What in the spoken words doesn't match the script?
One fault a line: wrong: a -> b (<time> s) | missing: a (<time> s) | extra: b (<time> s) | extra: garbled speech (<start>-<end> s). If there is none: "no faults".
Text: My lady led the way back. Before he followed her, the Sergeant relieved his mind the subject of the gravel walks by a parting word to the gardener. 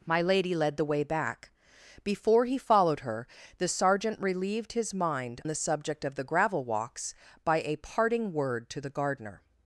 no faults